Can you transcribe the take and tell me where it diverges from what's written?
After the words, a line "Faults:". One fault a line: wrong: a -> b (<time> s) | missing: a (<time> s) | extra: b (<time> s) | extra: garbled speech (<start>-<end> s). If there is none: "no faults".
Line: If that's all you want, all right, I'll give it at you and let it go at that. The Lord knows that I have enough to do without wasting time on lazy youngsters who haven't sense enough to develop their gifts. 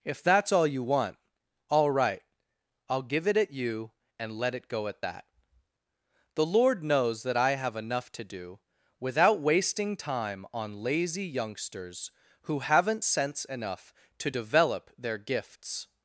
If that's all you want, all right, I'll give it at you and let it go at that. The Lord knows that I have enough to do without wasting time on lazy youngsters who haven't sense enough to develop their gifts.
Faults:
no faults